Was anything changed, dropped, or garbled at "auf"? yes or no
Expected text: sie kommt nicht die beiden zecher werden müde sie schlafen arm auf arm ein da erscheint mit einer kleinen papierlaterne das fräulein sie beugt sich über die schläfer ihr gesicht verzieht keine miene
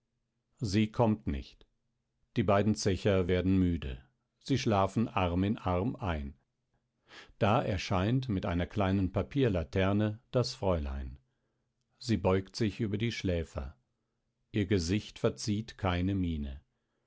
yes